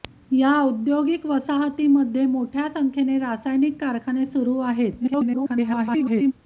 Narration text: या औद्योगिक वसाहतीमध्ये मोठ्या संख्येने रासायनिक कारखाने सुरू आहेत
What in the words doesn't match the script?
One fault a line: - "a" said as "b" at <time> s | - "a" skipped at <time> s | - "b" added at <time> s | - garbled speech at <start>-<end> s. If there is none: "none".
- garbled speech at 5.0-6.3 s